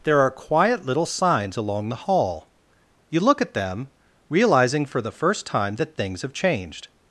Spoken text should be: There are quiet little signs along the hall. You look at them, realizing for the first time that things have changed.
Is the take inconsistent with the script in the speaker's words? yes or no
no